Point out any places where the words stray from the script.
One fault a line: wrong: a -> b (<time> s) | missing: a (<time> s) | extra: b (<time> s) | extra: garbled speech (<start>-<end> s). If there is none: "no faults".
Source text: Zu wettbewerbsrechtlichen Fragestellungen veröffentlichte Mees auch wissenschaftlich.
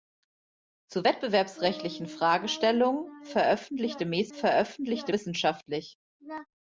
wrong: auch -> veröffentlichte (4.3 s)